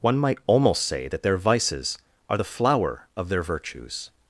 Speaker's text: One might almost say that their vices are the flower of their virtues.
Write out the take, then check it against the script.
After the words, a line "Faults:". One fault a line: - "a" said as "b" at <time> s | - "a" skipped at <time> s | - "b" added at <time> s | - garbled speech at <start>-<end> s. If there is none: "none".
One might almost say that their vices are the flower of their virtues.
Faults:
none